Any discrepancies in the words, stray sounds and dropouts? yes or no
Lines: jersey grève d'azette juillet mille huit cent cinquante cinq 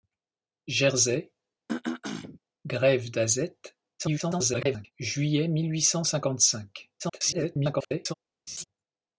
yes